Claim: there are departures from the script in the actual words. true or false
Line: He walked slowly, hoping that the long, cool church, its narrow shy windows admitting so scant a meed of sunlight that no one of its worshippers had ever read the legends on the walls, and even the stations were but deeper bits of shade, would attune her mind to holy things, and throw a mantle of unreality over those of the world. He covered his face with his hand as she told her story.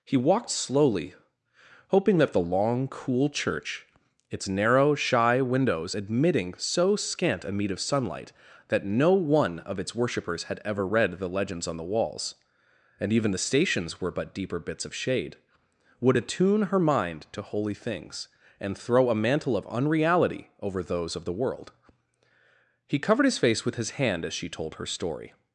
false